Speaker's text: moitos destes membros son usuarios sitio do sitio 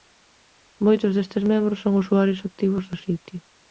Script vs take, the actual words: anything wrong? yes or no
yes